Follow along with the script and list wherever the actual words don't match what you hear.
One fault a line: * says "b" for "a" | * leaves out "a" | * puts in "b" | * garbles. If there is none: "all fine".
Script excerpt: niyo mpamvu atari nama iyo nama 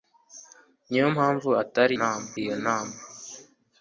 all fine